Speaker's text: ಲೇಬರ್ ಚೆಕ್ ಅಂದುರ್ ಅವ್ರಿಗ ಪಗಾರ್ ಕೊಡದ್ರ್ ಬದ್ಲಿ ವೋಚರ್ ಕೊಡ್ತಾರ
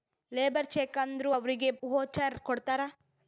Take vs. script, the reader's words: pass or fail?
fail